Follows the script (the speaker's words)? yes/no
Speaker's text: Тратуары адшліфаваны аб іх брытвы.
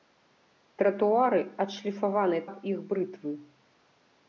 yes